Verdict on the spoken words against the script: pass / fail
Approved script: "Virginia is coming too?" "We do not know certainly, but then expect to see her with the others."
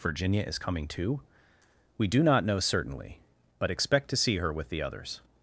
fail